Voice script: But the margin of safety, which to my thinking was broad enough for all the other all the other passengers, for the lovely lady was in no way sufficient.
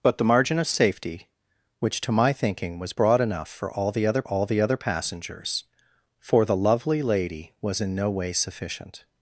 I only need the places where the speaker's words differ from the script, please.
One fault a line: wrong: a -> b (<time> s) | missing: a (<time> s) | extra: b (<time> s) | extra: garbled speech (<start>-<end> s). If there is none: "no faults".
no faults